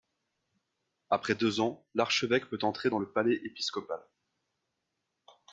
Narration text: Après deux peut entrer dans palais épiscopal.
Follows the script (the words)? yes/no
no